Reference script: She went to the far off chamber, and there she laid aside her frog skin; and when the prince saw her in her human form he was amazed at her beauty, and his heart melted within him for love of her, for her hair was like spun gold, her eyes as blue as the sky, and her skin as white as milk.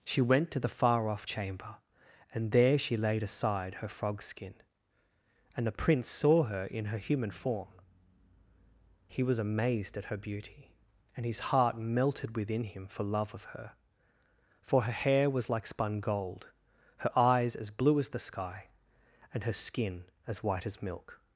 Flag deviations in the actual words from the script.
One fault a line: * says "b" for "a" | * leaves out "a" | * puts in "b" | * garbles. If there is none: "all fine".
* leaves out "when"